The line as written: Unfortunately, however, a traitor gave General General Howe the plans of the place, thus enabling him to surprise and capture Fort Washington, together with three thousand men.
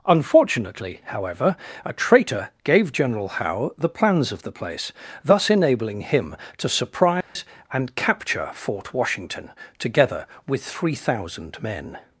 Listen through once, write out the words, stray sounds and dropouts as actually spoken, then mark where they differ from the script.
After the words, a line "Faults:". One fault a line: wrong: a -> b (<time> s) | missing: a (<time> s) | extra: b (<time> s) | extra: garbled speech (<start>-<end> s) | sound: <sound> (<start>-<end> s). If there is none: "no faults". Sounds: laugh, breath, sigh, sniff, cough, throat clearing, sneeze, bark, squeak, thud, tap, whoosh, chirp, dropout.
Unfortunately, however, a traitor gave General Howe the plans of the place, thus enabling him to surprise and capture Fort Washington, together with three thousand men.
Faults:
missing: General (3.3 s)
sound: dropout (7.2-7.4 s)